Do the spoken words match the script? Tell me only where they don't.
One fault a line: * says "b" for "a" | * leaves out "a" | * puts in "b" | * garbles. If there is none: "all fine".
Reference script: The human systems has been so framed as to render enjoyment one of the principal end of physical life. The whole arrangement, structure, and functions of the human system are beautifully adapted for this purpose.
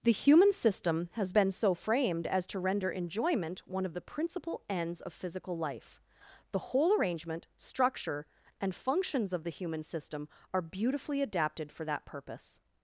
* says "system" for "systems"
* says "ends" for "end"
* says "that" for "this"